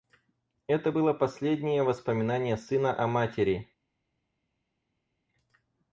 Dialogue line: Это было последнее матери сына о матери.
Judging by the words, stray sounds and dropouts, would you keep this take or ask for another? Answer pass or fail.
fail